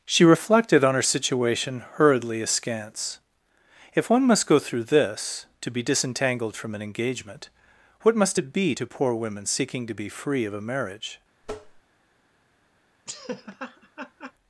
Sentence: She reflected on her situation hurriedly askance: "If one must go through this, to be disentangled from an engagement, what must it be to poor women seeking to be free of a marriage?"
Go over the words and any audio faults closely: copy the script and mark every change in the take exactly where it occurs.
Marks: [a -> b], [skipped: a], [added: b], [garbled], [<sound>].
She reflected on her situation hurriedly askance: "If one must go through this, to be disentangled from an engagement, what must it be to poor women seeking to be free of a marriage?" [tap] [laugh]